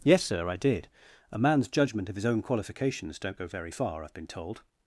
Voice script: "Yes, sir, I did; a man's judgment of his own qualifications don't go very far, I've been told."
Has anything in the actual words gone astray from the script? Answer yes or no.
no